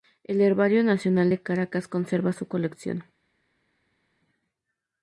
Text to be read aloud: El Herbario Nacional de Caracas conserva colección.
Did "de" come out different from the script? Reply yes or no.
no